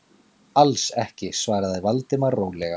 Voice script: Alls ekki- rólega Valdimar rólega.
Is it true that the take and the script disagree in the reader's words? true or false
true